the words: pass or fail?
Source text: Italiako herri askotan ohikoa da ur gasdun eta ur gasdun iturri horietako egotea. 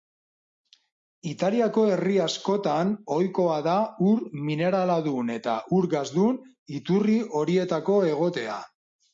fail